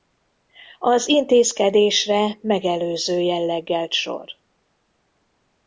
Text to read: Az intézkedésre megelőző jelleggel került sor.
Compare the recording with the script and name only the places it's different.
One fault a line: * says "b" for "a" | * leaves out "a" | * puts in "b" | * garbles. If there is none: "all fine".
* leaves out "került"